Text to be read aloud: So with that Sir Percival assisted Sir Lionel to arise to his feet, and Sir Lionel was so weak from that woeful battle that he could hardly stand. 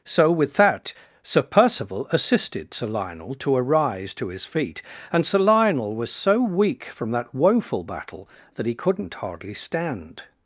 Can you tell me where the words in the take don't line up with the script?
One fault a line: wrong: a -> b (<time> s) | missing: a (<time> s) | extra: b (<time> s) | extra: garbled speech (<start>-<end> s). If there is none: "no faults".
wrong: could -> couldn't (8.7 s)